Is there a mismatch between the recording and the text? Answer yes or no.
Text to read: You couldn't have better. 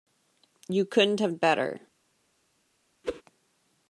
no